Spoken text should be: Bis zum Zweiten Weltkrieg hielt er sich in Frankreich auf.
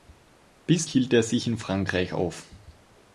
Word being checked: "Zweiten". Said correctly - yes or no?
no